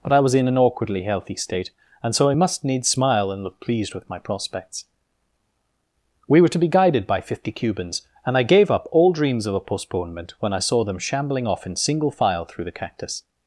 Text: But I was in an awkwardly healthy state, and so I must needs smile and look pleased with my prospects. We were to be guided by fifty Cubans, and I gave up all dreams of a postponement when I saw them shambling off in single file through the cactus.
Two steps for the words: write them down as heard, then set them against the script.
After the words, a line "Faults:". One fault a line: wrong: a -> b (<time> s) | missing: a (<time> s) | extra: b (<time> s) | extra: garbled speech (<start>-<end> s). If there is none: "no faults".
But I was in an awkwardly healthy state, and so I must needs smile and look pleased with my prospects. We were to be guided by fifty Cubans, and I gave up all dreams of a postponement when I saw them shambling off in single file through the cactus.
Faults:
no faults